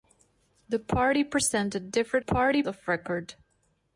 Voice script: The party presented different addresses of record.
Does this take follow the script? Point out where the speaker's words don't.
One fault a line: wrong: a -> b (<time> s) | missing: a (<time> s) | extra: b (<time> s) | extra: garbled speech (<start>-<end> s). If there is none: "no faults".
wrong: addresses -> party (2.2 s)